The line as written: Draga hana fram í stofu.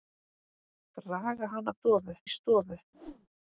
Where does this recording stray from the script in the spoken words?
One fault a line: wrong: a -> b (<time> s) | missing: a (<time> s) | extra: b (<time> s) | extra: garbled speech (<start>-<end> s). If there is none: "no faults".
wrong: fram -> stofu (1.8 s)